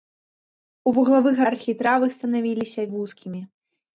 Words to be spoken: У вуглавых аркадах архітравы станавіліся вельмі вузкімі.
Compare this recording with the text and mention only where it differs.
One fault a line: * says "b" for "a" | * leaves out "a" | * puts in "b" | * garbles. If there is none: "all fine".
* leaves out "аркадах"
* leaves out "вельмі"